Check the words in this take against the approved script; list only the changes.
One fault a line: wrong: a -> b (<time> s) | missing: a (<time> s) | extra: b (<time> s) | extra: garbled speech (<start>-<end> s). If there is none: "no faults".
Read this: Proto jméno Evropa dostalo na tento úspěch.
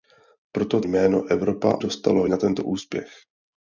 no faults